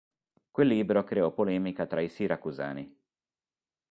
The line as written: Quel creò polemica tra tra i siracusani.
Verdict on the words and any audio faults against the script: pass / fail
fail